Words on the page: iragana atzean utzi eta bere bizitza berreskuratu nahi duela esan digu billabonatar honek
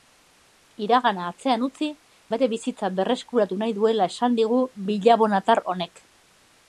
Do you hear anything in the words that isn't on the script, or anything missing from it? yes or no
yes